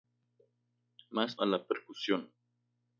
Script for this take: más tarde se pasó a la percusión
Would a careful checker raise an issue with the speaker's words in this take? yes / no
yes